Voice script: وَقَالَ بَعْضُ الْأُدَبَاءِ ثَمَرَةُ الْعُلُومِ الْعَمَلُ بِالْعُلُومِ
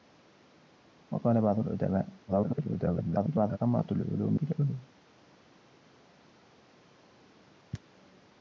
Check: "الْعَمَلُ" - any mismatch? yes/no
yes